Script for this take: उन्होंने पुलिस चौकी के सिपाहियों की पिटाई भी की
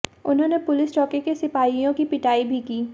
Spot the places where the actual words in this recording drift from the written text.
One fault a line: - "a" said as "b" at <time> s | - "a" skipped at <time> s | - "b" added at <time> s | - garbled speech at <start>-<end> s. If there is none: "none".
none